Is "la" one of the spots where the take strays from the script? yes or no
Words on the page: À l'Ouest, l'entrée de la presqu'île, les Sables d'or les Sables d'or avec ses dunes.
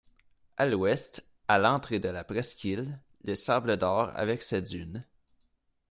no